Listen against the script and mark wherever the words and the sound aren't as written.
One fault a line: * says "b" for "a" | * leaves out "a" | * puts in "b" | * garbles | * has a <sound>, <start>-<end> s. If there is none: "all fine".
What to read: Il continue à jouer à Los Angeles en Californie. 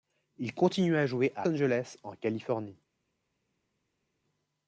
* leaves out "Los"